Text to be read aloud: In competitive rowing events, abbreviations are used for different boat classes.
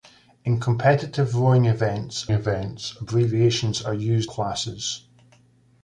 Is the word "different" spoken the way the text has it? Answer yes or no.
no